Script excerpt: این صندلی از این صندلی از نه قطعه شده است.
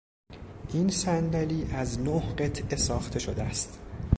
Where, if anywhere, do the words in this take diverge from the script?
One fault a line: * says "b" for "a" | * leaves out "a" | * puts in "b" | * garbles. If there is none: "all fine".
* leaves out "این صندلی از"
* puts in "ساخته"